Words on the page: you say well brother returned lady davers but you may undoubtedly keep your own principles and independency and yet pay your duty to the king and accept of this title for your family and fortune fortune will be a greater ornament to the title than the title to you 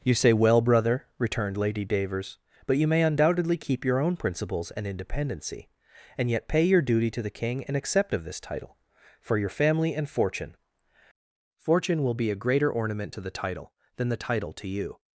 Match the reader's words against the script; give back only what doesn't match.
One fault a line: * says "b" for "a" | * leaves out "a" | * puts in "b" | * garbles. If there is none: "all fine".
all fine